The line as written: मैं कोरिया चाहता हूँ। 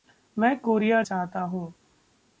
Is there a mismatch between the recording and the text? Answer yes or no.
no